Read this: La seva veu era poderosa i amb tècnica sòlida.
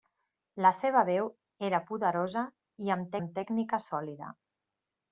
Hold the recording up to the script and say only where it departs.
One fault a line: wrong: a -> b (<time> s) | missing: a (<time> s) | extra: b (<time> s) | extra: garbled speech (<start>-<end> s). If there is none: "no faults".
extra: amb (3.2 s)